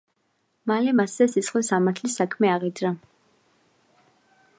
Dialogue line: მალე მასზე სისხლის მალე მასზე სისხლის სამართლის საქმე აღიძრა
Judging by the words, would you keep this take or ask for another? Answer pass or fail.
fail